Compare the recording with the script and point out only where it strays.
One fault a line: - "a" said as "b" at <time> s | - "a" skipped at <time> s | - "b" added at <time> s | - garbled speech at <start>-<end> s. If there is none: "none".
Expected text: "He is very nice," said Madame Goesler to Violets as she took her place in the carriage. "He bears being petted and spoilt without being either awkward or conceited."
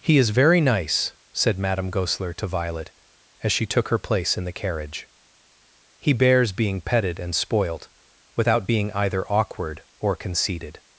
- "Violets" said as "Violet" at 2.5 s